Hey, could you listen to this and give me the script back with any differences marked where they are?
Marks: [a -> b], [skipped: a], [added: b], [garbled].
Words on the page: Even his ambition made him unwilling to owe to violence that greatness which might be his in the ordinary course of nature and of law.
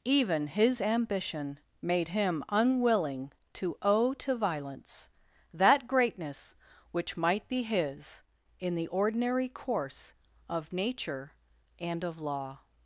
Even his ambition made him unwilling to owe to violence that greatness which might be his in the ordinary course of nature and of law.